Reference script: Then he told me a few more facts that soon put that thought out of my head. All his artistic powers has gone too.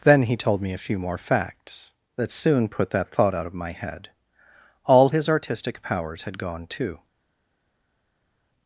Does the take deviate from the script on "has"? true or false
true